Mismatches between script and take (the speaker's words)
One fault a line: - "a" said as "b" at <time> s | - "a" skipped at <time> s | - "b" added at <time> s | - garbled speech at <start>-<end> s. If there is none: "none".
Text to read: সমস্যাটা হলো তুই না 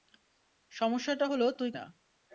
none